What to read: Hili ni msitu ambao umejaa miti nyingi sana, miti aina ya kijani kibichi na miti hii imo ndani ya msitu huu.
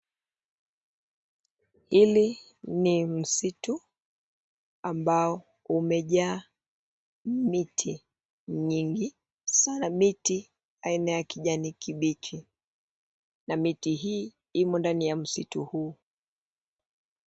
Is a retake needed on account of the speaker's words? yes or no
no